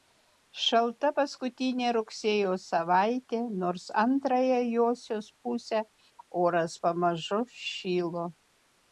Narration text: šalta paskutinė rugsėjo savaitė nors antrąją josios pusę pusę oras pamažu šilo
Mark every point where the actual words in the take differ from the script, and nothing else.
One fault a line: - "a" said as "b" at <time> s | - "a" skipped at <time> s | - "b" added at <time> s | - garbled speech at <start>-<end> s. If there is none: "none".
- "pusę" skipped at 5.8 s